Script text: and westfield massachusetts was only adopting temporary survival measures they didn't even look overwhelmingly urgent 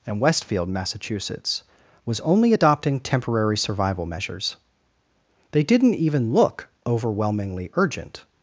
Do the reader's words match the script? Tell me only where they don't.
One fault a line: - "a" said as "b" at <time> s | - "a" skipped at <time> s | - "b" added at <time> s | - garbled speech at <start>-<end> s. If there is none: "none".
none